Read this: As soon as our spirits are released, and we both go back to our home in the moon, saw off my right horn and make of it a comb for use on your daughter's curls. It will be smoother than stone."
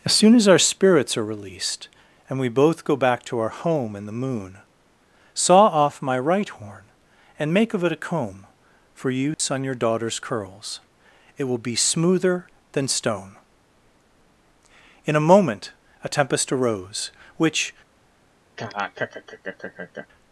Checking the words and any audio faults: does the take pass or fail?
fail